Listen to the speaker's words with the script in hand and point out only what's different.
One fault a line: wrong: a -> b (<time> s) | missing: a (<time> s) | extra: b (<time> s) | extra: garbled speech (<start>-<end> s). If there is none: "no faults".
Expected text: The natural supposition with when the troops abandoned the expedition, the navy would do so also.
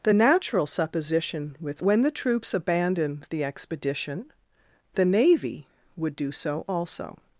no faults